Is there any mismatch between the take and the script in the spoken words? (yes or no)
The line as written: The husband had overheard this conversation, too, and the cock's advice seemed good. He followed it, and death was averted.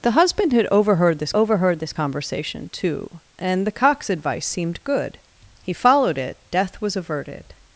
yes